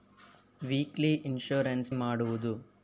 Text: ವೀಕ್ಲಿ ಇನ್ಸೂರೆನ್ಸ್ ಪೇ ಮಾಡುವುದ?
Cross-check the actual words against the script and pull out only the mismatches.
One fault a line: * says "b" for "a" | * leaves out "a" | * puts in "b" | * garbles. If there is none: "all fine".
* leaves out "ಪೇ"